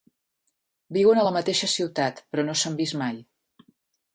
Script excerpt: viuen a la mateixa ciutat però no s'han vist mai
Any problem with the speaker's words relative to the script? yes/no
no